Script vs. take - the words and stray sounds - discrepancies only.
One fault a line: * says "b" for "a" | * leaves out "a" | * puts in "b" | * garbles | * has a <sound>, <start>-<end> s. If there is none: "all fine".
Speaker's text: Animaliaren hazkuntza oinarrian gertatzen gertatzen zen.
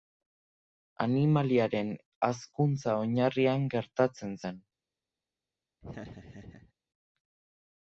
* leaves out "gertatzen"
* has a laugh, 5.8-6.7 s